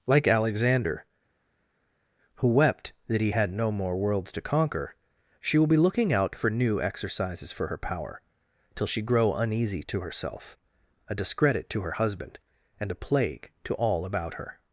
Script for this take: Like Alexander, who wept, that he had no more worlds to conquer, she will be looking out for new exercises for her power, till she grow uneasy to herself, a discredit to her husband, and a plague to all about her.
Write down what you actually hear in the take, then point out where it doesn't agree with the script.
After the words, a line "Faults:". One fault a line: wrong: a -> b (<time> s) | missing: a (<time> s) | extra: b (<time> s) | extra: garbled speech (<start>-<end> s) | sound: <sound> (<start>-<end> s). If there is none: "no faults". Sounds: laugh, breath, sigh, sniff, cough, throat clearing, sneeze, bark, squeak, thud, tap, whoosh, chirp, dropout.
Like Alexander, who wept, that he had no more worlds to conquer, she will be looking out for new exercises for her power, till she grow uneasy to herself, a discredit to her husband, and a plague to all about her.
Faults:
no faults